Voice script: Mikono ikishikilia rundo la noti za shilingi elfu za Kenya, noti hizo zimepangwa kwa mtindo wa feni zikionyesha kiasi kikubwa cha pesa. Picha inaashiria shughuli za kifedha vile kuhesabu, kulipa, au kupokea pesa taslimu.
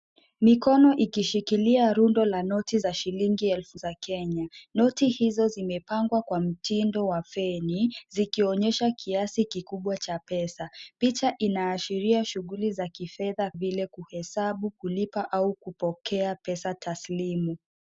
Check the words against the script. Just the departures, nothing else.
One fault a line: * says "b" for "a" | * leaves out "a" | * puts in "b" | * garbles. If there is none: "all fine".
all fine